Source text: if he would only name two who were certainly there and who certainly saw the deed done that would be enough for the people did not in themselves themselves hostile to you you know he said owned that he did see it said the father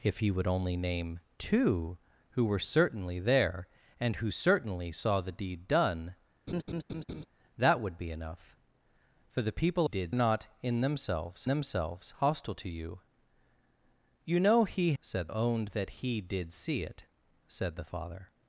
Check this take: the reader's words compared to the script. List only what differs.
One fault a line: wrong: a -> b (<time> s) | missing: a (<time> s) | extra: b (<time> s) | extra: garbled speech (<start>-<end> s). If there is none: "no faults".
no faults